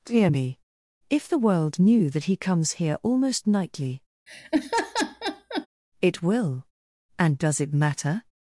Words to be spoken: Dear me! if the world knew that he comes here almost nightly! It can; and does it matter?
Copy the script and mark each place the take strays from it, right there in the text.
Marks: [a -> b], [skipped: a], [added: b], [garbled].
Dear me! if the world knew that he comes here almost nightly! It [can; -> will] and does it matter?